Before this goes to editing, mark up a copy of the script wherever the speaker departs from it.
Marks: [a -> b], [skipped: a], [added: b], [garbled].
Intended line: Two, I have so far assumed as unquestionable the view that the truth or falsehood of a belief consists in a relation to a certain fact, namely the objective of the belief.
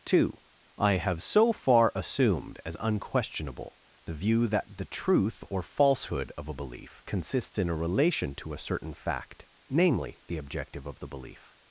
Two, I have so far assumed as unquestionable the view that the truth or falsehood of a belief consists in a relation to a certain fact, namely the objective of the belief.